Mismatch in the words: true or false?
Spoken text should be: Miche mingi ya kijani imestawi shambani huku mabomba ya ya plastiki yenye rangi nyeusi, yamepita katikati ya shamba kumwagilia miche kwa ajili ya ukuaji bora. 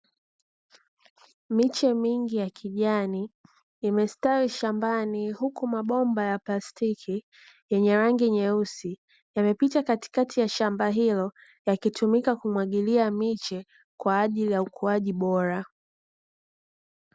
true